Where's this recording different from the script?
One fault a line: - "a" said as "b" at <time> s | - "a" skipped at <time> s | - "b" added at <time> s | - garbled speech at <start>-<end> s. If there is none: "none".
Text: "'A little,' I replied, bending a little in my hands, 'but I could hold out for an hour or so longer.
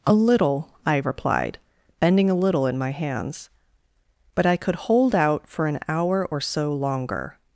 none